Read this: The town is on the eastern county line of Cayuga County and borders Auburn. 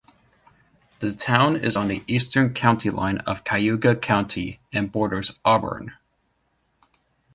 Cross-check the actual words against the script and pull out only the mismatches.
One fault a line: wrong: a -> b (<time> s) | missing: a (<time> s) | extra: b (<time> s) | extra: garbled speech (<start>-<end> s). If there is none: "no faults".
no faults